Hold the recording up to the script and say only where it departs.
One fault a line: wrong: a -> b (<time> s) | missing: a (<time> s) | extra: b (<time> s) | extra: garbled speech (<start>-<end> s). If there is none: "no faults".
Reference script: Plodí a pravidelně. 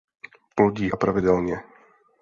no faults